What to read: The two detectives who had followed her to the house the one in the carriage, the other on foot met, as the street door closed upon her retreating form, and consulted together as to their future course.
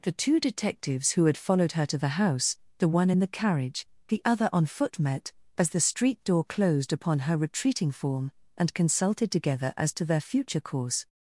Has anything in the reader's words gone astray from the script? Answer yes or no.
no